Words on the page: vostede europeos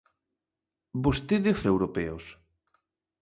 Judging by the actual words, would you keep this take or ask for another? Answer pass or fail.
pass